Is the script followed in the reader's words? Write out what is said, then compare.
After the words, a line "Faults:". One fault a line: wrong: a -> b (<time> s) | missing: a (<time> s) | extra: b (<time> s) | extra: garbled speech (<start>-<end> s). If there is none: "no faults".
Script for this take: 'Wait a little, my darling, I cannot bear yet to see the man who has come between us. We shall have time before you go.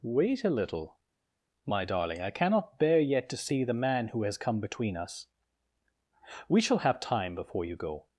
'Wait a little, my darling, I cannot bear yet to see the man who has come between us. We shall have time before you go.
Faults:
no faults